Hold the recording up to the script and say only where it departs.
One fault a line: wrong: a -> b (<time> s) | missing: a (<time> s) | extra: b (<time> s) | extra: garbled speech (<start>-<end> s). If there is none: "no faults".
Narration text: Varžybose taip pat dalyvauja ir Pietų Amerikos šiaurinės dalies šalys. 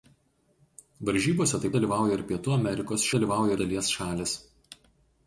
missing: pat (1.8 s)
wrong: šiaurinės -> dalyvauja (3.2 s)